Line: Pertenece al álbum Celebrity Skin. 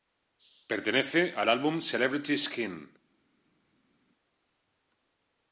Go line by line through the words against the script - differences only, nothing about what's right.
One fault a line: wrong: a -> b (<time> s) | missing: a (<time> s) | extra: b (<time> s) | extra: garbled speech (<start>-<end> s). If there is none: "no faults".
no faults